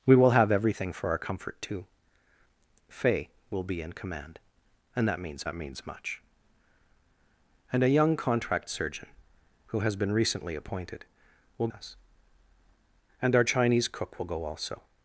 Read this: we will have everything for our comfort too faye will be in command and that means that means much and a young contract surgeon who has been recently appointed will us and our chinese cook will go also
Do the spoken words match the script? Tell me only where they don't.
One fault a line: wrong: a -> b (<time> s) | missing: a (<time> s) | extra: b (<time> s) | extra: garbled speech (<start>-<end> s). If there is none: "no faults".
no faults